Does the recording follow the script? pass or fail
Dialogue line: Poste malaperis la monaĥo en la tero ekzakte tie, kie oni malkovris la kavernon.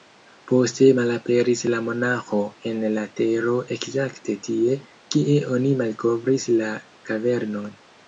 pass